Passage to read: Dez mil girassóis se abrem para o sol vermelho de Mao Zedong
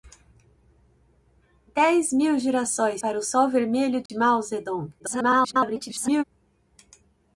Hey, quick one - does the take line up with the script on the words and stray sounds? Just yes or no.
no